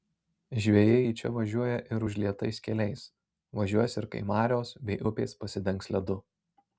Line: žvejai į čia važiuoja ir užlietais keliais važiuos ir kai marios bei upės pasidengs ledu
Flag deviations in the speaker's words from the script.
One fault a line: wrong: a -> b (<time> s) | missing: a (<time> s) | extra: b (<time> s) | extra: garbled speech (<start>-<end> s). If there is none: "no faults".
no faults